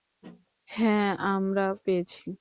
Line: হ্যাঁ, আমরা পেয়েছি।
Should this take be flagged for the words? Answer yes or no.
no